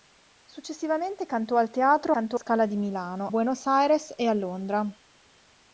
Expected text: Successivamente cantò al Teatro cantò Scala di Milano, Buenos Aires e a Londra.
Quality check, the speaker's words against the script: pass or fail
pass